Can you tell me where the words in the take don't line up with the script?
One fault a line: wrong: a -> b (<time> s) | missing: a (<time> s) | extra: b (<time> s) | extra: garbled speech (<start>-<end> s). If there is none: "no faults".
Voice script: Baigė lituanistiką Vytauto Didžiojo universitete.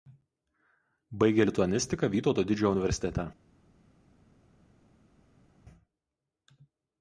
no faults